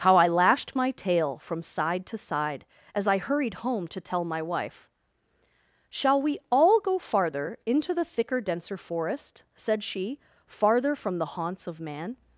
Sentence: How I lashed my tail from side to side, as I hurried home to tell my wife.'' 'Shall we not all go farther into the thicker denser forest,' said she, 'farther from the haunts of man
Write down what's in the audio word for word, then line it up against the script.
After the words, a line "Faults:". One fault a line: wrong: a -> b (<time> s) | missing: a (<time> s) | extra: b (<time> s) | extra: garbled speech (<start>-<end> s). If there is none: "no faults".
How I lashed my tail from side to side, as I hurried home to tell my wife.'' 'Shall we all go farther into the thicker denser forest,' said she, 'farther from the haunts of man
Faults:
missing: not (6.4 s)